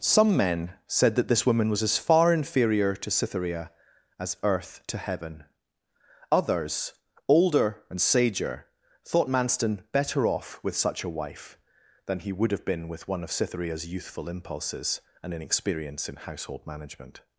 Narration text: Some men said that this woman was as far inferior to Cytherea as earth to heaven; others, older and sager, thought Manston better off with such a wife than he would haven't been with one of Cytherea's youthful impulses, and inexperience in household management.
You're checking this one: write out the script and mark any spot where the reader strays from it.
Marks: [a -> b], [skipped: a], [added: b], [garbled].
Some men said that this woman was as far inferior to Cytherea as earth to heaven; others, older and sager, thought Manston better off with such a wife than he would [haven't -> have] been with one of Cytherea's youthful impulses, and inexperience in household management.